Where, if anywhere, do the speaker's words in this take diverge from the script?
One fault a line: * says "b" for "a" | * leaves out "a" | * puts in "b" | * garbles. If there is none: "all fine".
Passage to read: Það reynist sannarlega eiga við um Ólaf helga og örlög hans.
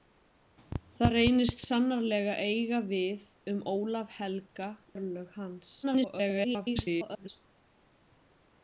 * leaves out "og"
* garbles